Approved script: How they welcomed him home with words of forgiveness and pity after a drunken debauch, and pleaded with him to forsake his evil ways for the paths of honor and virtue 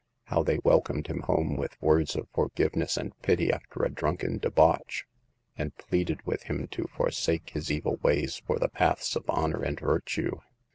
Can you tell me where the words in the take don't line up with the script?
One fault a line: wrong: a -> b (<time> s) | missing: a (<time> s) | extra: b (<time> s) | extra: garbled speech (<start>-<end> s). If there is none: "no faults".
no faults